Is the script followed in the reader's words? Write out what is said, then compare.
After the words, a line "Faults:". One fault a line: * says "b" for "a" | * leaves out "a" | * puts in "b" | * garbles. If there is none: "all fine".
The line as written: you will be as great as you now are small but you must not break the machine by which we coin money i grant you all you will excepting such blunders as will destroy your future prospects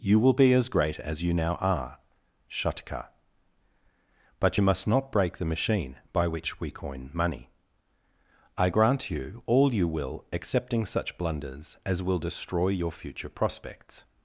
you will be as great as you now are shatka but you must not break the machine by which we coin money i grant you all you will excepting such blunders as will destroy your future prospects
Faults:
* says "shatka" for "small"